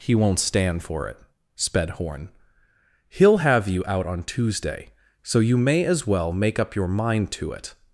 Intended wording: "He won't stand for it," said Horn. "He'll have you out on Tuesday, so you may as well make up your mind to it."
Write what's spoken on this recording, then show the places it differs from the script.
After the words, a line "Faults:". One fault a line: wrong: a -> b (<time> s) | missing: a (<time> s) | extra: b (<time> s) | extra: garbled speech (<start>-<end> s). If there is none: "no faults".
"He won't stand for it," sped Horn. "He'll have you out on Tuesday, so you may as well make up your mind to it."
Faults:
wrong: said -> sped (1.6 s)